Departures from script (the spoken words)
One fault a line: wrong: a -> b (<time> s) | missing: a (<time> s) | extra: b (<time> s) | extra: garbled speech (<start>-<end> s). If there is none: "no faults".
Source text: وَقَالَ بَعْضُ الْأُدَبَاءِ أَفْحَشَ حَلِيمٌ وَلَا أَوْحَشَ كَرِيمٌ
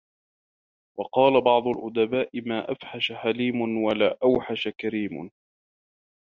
extra: مَا (2.5 s)